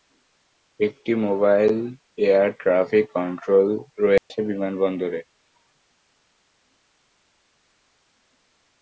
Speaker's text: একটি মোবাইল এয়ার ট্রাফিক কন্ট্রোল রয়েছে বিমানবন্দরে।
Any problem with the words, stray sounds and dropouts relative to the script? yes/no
yes